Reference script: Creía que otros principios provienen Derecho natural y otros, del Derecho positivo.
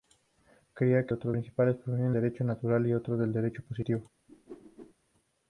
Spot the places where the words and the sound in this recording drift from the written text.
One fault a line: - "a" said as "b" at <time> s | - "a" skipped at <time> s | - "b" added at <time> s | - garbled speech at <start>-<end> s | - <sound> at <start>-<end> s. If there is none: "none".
- whoosh at 4.3-4.9 s